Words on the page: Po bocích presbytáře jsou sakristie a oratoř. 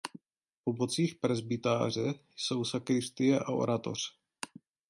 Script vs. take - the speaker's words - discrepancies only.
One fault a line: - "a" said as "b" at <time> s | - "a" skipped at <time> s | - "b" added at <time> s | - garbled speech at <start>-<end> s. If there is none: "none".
none